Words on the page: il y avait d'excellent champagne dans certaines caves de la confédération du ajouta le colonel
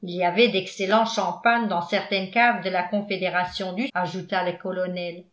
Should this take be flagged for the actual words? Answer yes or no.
no